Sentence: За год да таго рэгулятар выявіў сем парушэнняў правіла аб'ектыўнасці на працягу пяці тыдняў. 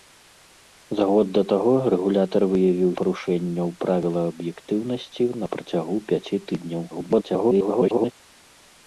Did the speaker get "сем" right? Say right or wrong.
wrong